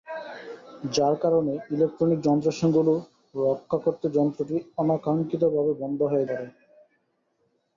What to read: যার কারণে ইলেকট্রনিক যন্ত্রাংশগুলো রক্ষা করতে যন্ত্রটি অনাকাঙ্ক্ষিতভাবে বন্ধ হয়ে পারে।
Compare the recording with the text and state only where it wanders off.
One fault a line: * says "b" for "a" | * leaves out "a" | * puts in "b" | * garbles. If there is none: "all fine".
all fine